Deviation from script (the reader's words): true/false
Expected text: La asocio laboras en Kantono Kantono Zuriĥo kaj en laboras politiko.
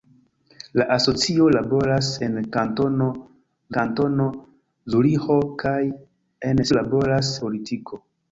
false